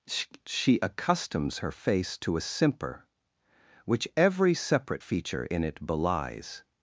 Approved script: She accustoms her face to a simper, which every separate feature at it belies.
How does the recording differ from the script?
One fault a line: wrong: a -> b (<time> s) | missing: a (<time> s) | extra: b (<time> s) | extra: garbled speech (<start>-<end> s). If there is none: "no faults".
wrong: at -> in (5.4 s)